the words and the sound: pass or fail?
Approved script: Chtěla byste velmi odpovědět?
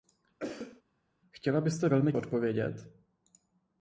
fail